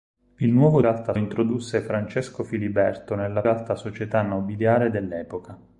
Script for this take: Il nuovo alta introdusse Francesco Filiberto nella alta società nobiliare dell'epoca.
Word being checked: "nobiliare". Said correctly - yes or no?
yes